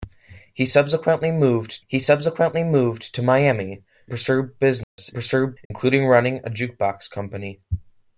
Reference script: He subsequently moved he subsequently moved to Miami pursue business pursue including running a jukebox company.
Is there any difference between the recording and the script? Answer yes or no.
no